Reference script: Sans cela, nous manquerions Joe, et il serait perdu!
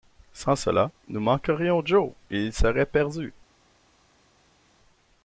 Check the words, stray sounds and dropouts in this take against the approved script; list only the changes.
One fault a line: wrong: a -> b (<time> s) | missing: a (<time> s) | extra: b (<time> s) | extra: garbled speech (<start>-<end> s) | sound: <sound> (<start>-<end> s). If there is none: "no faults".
no faults